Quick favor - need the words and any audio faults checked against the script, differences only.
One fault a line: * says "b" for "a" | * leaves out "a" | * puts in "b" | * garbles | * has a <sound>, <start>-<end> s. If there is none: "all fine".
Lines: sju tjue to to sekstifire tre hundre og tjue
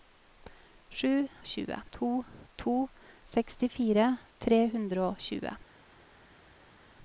all fine